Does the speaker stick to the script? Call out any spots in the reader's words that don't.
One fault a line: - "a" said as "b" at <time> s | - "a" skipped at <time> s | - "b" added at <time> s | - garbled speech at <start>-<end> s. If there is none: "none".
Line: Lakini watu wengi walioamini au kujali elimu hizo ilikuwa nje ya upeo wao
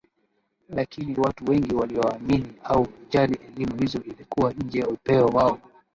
none